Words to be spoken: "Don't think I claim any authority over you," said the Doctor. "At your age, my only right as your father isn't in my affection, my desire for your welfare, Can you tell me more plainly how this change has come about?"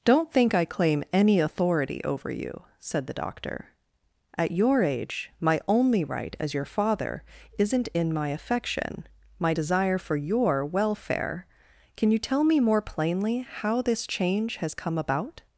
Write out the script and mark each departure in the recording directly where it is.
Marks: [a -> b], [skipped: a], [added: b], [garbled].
"Don't think I claim any authority over you," said the Doctor. "At your age, my only right as your father isn't in my affection, my desire for your welfare, Can you tell me more plainly how this change has come about?"